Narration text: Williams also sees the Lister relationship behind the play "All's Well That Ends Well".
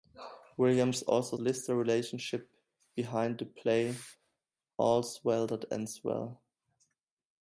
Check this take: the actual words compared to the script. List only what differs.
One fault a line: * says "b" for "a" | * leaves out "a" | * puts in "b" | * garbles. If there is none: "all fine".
* leaves out "sees"